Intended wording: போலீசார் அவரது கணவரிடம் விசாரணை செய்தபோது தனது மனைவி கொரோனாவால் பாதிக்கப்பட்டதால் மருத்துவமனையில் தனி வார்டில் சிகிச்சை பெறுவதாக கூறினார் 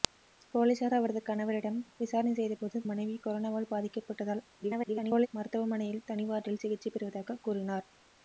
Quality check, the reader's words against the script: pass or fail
fail